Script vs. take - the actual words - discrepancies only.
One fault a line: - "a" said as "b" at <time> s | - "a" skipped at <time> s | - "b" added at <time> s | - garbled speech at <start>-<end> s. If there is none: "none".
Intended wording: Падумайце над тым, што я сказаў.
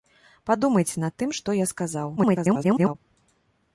- garbled speech at 2.2-2.9 s